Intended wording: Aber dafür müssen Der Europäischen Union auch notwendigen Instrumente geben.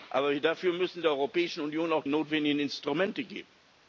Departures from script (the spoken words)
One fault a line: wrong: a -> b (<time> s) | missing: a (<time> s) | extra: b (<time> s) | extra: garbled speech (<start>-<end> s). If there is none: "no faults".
no faults